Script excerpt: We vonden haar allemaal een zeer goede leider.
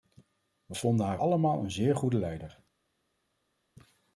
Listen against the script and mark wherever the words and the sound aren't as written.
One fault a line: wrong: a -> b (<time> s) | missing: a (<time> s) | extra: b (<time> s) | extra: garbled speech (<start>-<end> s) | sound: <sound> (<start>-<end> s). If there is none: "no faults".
no faults